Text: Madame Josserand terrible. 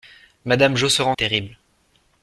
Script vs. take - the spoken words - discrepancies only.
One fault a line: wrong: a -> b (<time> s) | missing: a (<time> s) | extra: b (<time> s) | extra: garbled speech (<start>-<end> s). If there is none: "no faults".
no faults